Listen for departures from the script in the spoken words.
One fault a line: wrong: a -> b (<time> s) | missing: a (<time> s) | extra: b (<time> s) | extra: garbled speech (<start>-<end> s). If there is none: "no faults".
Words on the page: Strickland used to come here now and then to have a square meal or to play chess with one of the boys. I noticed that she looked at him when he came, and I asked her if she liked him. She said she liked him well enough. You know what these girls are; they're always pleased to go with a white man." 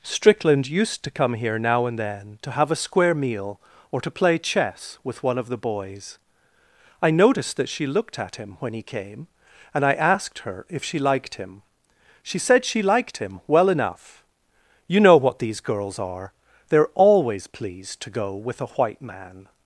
no faults